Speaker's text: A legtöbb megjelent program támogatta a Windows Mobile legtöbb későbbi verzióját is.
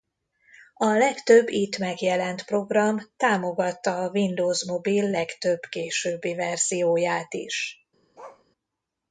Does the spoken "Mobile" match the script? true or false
true